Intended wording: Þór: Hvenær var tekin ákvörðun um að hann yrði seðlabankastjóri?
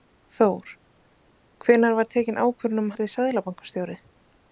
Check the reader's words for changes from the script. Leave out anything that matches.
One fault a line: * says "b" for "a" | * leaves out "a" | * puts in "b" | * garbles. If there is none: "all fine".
* leaves out "hann"